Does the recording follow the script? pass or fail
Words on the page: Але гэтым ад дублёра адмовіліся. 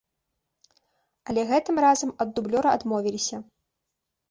fail